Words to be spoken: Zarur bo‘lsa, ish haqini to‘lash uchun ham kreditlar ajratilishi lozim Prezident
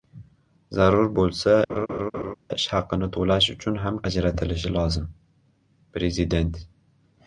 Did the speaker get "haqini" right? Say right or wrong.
right